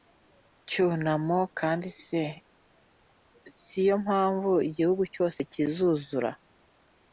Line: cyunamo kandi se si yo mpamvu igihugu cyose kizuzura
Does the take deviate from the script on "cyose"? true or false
false